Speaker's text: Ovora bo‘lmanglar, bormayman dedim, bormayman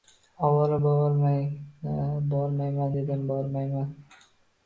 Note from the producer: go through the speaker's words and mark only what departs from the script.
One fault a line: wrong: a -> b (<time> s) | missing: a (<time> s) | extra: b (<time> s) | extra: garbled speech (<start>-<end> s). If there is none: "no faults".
no faults